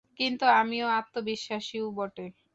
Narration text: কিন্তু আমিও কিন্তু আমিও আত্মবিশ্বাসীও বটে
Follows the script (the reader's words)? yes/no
no